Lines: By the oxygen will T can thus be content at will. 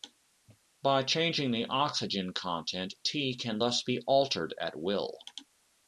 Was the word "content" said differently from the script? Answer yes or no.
yes